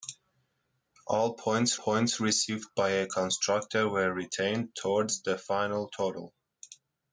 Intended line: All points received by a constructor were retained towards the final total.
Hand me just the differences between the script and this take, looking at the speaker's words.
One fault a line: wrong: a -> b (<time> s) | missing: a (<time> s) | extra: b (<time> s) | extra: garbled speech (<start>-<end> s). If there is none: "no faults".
extra: points (1.8 s)